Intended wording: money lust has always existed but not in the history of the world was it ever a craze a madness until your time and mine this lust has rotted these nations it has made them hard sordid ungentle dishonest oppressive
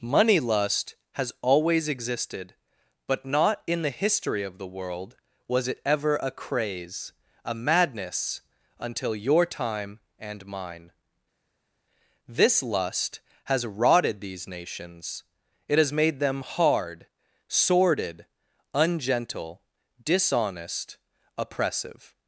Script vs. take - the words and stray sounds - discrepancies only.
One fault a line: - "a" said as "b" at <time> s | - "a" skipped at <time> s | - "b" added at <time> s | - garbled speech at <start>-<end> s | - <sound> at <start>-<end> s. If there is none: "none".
none